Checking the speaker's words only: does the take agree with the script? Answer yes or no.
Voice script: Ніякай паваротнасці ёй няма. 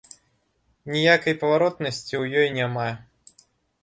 no